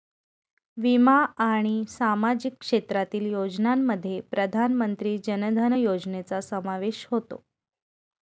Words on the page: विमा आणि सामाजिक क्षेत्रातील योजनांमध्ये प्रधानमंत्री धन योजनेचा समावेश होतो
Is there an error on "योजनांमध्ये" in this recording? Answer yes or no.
no